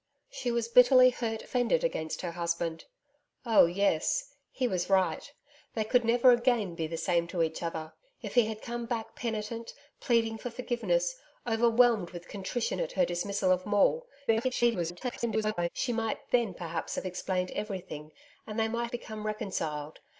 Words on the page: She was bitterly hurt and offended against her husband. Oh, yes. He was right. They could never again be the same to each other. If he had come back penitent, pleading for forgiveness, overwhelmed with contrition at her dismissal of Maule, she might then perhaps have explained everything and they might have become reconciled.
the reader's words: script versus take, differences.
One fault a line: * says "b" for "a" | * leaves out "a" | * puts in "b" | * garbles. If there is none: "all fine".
* leaves out "and"
* garbles
* leaves out "have"